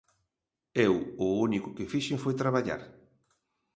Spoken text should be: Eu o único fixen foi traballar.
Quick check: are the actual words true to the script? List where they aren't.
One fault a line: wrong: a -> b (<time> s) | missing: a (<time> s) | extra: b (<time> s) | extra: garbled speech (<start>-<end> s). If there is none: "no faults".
extra: que (1.8 s)